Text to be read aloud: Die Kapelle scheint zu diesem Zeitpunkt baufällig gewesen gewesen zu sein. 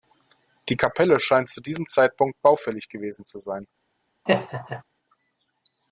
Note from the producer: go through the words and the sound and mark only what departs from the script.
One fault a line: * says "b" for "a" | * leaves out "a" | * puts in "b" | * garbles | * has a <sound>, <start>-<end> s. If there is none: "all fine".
* leaves out "gewesen"
* has a laugh, 4.3-4.8 s